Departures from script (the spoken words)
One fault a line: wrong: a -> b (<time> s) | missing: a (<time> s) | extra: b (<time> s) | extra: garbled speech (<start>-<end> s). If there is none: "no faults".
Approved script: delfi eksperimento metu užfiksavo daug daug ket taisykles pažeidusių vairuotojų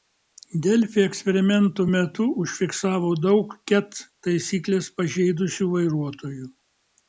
missing: daug (3.6 s)